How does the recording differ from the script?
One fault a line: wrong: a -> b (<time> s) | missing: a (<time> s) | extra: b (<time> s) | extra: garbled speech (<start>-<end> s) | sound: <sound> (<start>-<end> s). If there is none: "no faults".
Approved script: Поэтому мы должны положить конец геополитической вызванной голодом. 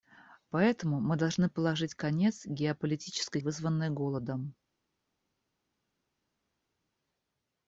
no faults